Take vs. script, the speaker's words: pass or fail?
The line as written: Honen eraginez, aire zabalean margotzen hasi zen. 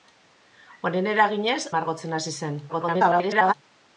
fail